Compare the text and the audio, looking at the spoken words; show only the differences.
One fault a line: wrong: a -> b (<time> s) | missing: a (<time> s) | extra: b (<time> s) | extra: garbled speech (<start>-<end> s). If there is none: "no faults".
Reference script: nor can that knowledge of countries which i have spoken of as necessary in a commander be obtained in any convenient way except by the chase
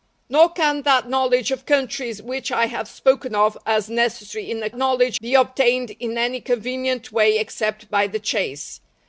wrong: commander -> knowledge (4.8 s)